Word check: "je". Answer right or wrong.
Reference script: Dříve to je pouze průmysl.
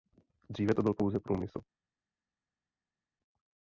wrong